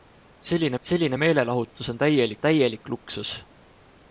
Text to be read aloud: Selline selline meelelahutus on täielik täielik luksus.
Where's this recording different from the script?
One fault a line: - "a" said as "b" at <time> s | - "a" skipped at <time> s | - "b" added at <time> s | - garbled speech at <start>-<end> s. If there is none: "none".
none